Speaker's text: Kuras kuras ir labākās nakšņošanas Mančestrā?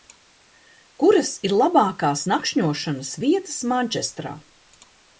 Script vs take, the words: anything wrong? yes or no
yes